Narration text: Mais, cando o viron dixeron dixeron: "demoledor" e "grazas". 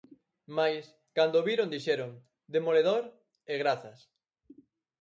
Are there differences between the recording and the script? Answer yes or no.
yes